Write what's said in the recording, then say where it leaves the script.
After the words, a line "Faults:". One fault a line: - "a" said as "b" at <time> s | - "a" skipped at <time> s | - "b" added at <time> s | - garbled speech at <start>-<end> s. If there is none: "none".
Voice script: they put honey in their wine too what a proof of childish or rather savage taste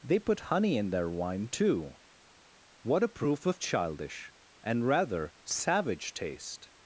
they put honey in their wine too what a proof of childish and rather savage taste
Faults:
- "or" said as "and" at 4.6 s